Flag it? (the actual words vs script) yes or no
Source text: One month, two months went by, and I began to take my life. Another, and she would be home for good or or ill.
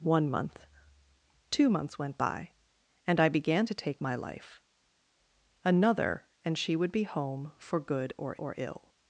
no